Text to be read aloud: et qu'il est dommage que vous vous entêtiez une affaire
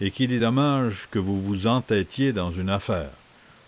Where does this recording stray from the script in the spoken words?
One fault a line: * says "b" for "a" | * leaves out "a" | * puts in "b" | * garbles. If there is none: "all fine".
* puts in "dans"